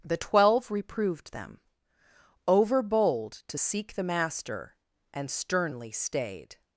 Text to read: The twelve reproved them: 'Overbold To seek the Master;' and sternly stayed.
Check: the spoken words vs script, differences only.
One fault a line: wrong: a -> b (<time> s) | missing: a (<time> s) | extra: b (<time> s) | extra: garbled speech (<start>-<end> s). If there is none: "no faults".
no faults